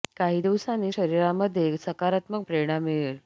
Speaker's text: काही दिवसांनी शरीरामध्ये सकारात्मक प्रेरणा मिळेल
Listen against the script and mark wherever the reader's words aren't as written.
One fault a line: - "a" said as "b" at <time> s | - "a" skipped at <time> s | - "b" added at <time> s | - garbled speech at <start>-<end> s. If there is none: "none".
none